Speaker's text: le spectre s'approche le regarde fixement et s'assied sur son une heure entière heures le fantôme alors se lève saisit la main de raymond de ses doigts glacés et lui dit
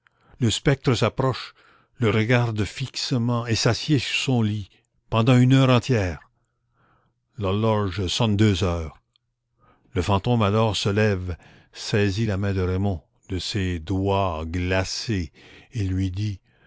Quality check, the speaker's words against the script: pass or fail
fail